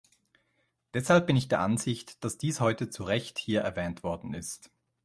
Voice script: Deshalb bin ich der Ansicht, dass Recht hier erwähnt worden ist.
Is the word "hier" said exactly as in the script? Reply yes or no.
yes